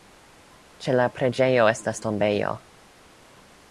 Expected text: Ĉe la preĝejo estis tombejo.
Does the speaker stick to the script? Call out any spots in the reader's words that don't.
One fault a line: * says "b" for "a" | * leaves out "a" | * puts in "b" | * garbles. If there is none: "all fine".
* says "estas" for "estis"